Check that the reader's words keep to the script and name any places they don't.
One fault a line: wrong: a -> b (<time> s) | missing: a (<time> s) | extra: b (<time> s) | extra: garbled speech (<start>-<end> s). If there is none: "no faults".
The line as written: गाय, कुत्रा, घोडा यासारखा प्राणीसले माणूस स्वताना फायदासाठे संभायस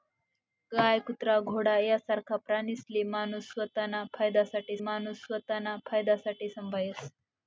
extra: माणूस स्वताना फायदासाठे (4.8 s)